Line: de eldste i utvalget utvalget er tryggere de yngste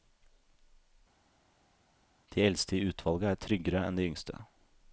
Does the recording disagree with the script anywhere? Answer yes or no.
yes